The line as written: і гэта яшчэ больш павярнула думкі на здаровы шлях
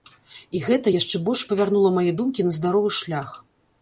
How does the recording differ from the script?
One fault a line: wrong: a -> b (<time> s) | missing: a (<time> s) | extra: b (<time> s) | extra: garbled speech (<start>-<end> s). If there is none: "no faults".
extra: мае (2.0 s)